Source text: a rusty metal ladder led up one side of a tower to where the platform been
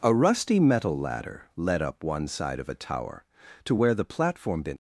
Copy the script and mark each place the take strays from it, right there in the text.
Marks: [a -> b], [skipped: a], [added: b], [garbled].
a rusty metal ladder led up one side of a tower to where the platform been